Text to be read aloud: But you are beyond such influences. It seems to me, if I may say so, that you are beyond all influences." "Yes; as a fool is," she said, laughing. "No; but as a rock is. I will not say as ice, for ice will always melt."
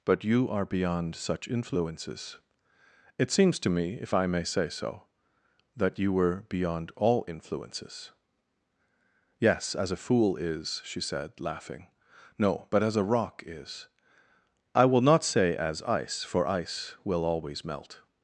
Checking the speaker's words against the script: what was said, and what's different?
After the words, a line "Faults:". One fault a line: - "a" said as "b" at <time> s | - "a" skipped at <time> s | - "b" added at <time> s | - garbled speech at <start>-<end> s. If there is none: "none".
But you are beyond such influences. It seems to me, if I may say so, that you were beyond all influences." "Yes; as a fool is," she said, laughing. "No; but as a rock is. I will not say as ice, for ice will always melt."
Faults:
- "are" said as "were" at 6.1 s